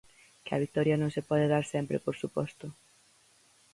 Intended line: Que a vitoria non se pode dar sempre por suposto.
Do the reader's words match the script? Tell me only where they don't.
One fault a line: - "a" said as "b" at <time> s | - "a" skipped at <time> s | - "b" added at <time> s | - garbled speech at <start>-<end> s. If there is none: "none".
none